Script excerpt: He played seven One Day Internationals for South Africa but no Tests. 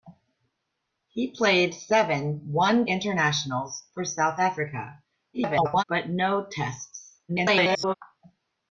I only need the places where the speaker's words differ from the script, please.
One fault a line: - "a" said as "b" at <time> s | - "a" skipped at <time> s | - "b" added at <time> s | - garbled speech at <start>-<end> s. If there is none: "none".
- "Day" skipped at 2.9 s
- garbled speech at 5.3-5.8 s
- garbled speech at 7.3-7.9 s